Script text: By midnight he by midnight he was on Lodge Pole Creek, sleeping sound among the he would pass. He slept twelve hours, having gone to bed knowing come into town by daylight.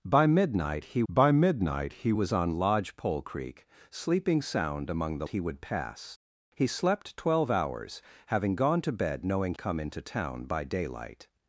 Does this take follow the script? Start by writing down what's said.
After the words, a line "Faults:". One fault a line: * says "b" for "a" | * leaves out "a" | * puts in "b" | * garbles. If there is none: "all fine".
By midnight he by midnight he was on Lodge Pole Creek, sleeping sound among the he would pass. He slept twelve hours, having gone to bed knowing come into town by daylight.
Faults:
all fine